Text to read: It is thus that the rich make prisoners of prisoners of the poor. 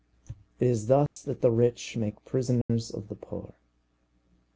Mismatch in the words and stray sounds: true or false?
true